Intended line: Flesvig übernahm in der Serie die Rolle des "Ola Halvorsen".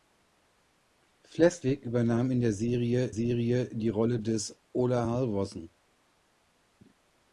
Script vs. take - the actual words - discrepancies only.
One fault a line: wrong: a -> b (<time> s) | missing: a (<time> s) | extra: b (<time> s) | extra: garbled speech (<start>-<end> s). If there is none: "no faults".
extra: Serie (3.1 s)